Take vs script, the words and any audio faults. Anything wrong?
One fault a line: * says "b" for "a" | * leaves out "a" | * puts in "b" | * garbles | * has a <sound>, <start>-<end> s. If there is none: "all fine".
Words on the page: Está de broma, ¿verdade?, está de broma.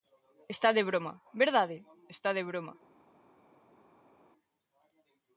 all fine